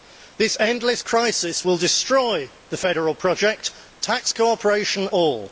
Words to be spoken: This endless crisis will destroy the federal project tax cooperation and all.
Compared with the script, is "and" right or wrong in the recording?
wrong